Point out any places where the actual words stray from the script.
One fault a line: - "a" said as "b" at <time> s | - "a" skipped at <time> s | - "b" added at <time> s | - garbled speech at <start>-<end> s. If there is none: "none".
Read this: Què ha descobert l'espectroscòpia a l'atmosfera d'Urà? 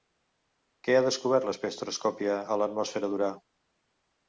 none